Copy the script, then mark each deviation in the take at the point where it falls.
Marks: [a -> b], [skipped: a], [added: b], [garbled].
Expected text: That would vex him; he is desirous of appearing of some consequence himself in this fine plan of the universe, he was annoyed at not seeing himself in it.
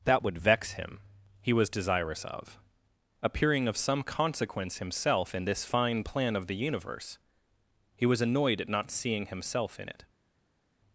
That would vex him; he [is -> was] desirous of appearing of some consequence himself in this fine plan of the universe, he was annoyed at not seeing himself in it.